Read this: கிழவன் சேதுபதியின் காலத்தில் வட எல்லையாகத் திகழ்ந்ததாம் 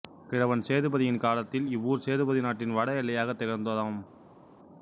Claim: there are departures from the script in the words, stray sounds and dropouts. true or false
true